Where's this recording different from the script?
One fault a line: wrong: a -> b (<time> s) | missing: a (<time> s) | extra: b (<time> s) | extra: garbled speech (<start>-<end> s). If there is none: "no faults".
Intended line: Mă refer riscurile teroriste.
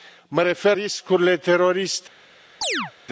no faults